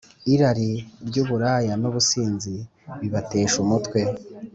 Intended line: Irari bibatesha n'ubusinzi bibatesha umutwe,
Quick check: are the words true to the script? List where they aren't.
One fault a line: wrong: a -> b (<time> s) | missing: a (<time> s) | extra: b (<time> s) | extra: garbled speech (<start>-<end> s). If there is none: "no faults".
wrong: bibatesha -> ry'uburaya (1.1 s)